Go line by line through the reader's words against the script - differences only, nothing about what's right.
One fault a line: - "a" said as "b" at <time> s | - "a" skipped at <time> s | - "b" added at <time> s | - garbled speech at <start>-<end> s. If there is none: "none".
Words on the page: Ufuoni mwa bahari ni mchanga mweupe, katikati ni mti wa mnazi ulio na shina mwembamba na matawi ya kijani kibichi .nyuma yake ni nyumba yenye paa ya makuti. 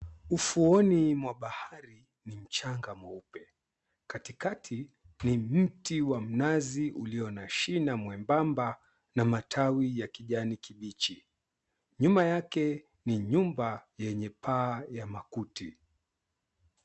none